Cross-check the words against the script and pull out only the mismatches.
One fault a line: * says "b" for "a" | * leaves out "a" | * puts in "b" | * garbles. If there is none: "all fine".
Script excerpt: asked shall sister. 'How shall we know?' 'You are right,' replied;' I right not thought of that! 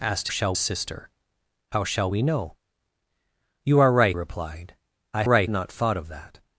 all fine